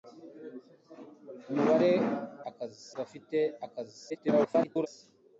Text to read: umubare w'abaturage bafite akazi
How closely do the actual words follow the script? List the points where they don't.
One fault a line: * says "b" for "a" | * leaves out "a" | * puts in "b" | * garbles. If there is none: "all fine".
* says "akazi" for "w'abaturage"
* garbles